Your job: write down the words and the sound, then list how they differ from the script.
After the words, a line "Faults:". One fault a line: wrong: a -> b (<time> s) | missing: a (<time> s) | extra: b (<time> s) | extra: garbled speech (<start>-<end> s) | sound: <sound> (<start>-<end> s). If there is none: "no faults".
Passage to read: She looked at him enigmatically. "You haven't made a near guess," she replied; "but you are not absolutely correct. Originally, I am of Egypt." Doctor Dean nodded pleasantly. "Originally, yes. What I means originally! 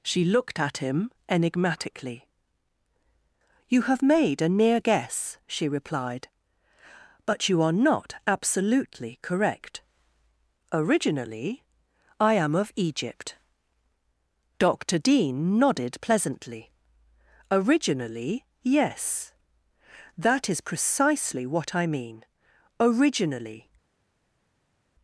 She looked at him enigmatically. "You have made a near guess," she replied; "but you are not absolutely correct. Originally, I am of Egypt." Doctor Dean nodded pleasantly. "Originally, yes. That is precisely what I mean originally!
Faults:
wrong: haven't -> have (3.8 s)
extra: That is precisely (20.2 s)
wrong: means -> mean (21.9 s)